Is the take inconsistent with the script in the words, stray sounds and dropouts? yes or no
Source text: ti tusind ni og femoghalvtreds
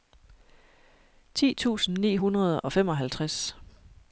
yes